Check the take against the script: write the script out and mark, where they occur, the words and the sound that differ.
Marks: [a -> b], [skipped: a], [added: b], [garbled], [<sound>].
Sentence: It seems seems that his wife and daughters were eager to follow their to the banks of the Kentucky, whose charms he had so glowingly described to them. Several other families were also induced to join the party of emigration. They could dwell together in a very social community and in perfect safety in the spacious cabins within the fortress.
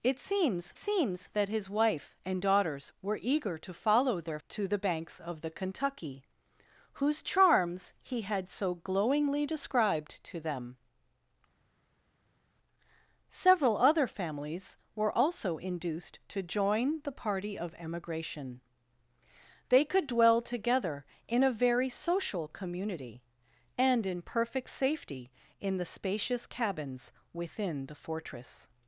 It seems seems that his wife and daughters were eager to follow their to the banks of the Kentucky, whose charms he had so glowingly described to them. Several other families were also induced to join the party of emigration. They could dwell together in a very social community and in perfect safety in the spacious cabins within the fortress.